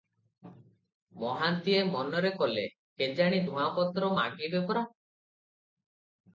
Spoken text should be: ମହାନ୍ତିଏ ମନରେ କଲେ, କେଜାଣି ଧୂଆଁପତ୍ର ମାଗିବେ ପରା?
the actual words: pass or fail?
pass